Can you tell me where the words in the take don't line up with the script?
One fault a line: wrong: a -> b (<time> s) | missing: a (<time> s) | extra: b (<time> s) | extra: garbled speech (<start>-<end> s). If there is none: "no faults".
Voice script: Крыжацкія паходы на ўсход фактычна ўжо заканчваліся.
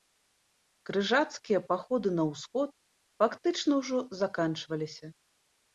no faults